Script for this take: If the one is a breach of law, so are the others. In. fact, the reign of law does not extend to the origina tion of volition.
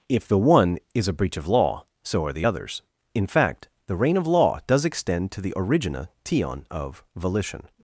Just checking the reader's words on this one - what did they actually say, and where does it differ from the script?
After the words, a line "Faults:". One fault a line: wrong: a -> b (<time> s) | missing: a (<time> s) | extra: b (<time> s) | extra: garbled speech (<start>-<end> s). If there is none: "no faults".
If the one is a breach of law, so are the others. In. fact, the reign of law does extend to the origina tion of volition.
Faults:
missing: not (4.8 s)